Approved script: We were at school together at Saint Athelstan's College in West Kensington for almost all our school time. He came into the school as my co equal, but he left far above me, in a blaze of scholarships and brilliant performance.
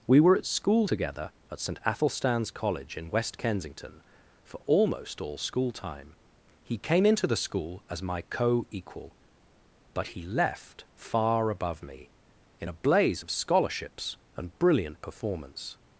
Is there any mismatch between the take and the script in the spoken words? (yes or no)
yes